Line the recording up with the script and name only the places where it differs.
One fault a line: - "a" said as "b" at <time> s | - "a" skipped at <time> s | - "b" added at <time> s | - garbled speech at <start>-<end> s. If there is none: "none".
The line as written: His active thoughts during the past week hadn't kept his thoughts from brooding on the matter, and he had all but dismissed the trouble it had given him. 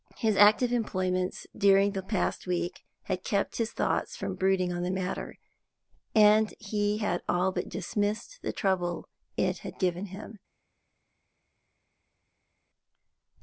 - "thoughts" said as "employments" at 0.7 s
- "hadn't" said as "had" at 3.0 s